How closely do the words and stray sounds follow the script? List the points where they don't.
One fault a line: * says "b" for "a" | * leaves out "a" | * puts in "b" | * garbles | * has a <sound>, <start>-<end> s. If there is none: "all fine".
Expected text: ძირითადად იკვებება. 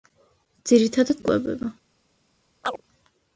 * has a chirp, 2.6-2.8 s